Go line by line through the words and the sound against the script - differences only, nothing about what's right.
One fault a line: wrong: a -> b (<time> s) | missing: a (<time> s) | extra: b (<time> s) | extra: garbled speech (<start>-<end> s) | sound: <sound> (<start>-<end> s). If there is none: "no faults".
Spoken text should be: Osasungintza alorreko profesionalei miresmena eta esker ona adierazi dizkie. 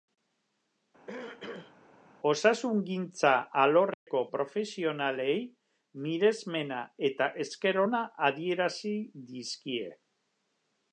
sound: throat clearing (1.1-1.7 s)
sound: dropout (3.9-4.1 s)